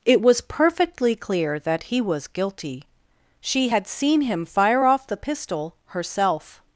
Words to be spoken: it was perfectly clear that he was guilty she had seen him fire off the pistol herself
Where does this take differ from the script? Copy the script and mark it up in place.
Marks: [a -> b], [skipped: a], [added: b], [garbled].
it was perfectly clear that he was guilty she had seen him fire off the pistol herself